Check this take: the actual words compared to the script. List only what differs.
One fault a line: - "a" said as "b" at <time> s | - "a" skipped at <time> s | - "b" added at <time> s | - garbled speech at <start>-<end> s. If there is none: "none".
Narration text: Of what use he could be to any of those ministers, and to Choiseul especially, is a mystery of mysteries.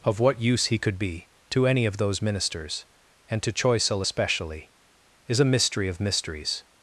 none